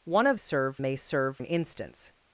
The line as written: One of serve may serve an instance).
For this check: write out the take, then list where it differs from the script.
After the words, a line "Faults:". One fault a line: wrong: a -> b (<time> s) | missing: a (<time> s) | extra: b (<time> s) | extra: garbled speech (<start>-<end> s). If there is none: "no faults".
One of serve may serve an instance).
Faults:
no faults